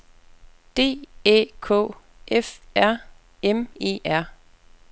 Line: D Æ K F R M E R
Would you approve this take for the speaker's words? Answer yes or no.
yes